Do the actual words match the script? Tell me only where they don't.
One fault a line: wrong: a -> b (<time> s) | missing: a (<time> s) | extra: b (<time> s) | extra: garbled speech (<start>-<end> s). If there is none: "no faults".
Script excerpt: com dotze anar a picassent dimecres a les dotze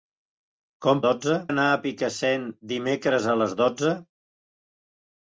no faults